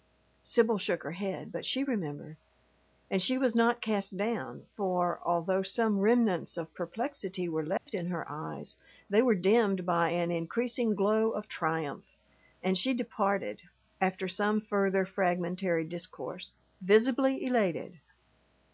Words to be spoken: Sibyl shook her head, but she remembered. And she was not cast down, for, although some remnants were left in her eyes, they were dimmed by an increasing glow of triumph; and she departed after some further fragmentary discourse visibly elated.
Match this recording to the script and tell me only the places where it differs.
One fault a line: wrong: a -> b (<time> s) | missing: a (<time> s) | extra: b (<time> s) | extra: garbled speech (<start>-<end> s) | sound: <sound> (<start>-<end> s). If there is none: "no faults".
extra: of perplexity (6.6 s)
sound: dropout (7.8-7.9 s)